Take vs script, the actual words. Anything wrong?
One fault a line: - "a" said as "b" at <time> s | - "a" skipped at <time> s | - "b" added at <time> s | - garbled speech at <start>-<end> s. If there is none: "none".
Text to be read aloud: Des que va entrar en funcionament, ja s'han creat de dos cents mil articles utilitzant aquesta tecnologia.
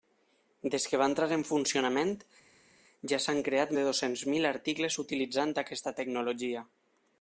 none